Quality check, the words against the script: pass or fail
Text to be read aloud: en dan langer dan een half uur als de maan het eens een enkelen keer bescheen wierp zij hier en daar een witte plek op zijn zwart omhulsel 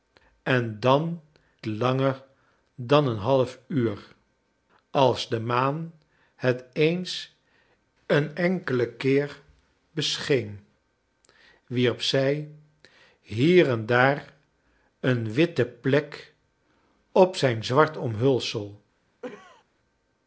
pass